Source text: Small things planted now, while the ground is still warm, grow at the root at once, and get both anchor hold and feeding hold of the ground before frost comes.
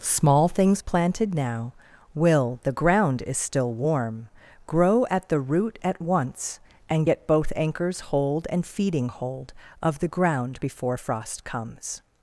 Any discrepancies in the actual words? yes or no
yes